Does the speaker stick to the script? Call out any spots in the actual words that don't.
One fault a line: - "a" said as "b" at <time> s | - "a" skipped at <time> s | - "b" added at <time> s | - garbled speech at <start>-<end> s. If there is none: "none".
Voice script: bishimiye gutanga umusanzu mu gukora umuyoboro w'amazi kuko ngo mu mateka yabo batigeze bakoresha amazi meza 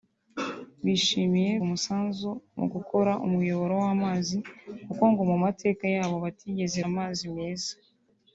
- "gutanga" skipped at 1.5 s
- "bakoresha" skipped at 6.8 s